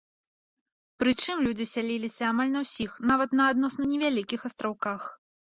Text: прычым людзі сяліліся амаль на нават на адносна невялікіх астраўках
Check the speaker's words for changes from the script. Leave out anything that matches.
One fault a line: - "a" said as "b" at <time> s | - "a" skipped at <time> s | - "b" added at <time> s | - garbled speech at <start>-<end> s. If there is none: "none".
- "ўсіх" added at 2.6 s